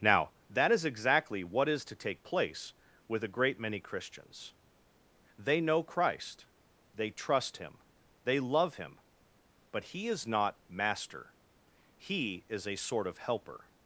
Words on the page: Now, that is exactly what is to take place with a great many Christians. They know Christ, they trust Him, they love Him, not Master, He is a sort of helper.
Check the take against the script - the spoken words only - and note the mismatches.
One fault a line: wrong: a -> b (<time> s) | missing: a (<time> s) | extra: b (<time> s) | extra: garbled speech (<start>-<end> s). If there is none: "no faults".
extra: but He is (9.7 s)